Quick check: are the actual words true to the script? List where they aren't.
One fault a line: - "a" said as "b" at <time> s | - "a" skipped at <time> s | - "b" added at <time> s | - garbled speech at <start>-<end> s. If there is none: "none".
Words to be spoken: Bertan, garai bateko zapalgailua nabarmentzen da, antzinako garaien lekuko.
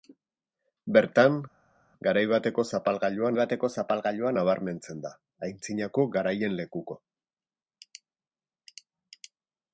- "bateko zapalgailua" added at 3.4 s